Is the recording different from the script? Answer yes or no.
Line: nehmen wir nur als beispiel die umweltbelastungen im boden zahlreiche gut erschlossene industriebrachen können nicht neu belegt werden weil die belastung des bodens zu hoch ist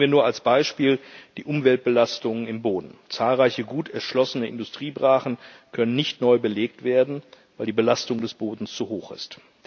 no